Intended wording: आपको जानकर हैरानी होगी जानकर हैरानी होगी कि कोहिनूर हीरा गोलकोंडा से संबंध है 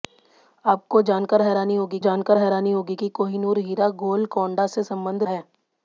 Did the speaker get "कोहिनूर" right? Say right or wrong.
right